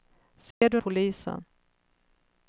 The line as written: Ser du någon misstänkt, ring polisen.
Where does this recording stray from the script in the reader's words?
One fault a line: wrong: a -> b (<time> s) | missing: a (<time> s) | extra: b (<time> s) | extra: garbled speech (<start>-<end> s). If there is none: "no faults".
missing: någon misstänkt ring (0.8 s)